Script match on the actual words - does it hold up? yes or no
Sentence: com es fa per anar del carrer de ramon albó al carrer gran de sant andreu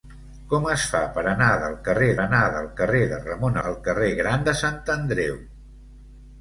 no